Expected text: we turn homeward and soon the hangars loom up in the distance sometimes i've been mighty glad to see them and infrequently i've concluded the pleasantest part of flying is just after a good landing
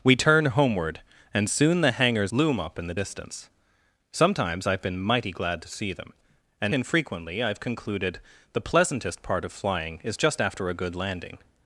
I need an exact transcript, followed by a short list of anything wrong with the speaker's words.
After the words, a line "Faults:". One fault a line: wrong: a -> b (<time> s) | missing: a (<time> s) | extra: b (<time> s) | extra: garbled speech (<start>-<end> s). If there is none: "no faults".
we turn homeward and soon the hangars loom up in the distance sometimes i've been mighty glad to see them and infrequently i've concluded the pleasantest part of flying is just after a good landing
Faults:
no faults